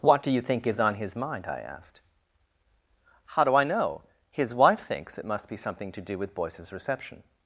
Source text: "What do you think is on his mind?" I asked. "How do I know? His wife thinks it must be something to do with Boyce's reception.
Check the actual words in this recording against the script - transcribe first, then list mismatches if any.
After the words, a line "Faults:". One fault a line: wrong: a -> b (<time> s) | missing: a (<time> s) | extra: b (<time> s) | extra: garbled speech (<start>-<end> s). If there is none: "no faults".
"What do you think is on his mind?" I asked. "How do I know? His wife thinks it must be something to do with Boyce's reception.
Faults:
no faults